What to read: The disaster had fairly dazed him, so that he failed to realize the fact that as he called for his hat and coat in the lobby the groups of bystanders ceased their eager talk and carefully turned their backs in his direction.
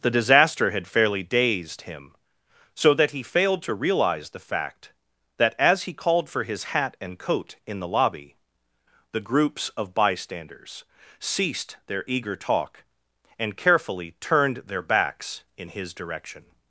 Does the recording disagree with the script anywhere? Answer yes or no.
no